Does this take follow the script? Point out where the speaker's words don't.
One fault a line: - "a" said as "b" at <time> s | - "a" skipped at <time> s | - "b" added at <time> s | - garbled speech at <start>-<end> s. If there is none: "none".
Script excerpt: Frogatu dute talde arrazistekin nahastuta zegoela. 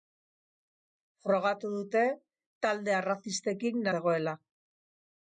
- "nahastuta" skipped at 3.9 s